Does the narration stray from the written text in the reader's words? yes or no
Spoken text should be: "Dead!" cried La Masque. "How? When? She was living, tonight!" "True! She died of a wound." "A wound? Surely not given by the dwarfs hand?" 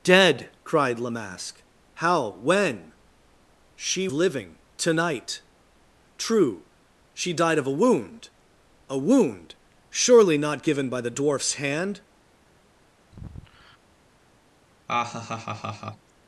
yes